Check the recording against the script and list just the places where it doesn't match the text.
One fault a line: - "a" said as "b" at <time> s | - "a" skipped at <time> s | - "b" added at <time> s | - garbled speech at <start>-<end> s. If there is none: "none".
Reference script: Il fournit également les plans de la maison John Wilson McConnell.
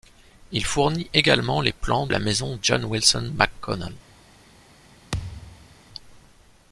- "de" skipped at 2.1 s